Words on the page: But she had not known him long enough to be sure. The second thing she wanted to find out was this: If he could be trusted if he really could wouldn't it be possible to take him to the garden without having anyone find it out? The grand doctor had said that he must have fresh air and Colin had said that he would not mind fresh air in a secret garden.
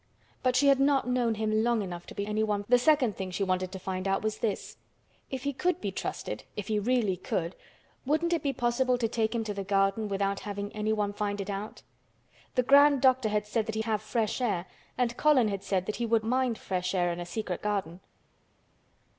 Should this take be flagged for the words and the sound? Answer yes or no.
yes